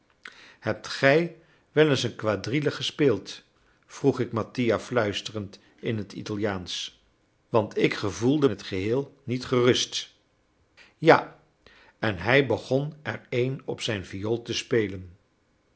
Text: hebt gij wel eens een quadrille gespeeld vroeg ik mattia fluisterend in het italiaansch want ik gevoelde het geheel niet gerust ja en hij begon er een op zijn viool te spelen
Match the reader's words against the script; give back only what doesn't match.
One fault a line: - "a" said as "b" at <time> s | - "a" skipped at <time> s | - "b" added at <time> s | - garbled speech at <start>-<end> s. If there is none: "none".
none